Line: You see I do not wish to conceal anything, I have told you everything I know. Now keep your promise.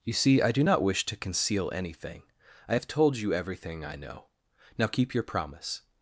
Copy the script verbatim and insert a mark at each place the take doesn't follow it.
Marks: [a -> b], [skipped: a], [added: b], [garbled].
You see I do not wish to conceal anything, I have told you everything I know. Now keep your promise.